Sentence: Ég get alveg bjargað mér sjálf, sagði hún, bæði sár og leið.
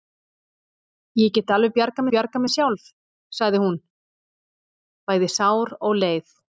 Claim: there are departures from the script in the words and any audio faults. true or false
true